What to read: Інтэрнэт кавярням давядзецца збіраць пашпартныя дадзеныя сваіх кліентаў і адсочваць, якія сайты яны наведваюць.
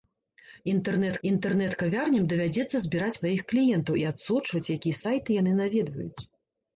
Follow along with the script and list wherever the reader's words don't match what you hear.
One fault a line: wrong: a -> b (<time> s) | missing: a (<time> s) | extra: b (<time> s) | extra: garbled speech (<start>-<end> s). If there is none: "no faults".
extra: інтэрнэт (1.3 s)
missing: пашпартныя дадзеныя (3.2 s)